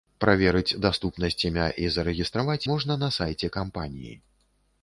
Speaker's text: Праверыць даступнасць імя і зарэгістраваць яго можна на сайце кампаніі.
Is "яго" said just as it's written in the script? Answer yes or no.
no